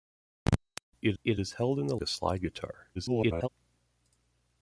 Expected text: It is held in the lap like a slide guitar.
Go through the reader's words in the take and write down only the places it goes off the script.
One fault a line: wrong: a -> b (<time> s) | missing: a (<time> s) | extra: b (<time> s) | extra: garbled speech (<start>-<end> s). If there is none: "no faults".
extra: it (1.2 s)
missing: lap like (2.0 s)
extra: garbled speech (2.9-3.5 s)